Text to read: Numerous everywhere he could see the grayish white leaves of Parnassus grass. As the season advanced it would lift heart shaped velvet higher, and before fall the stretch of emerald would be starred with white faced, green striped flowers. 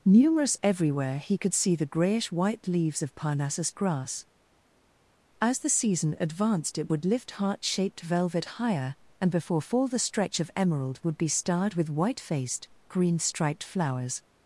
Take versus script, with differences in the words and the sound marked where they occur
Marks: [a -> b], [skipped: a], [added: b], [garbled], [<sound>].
Numerous everywhere he could see the grayish white leaves of Parnassus grass. As the season advanced it would lift heart shaped velvet higher, and before fall the stretch of emerald would be starred with white faced, green striped flowers.